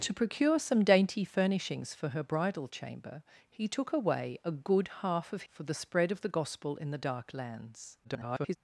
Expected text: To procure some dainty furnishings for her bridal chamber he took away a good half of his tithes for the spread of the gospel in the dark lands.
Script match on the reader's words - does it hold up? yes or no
no